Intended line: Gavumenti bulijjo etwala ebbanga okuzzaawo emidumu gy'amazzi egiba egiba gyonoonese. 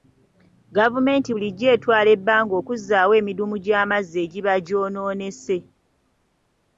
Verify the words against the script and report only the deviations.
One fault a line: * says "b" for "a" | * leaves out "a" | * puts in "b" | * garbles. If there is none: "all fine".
* leaves out "egiba"